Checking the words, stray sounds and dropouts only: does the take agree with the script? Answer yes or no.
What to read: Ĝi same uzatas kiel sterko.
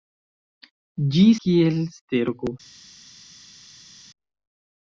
no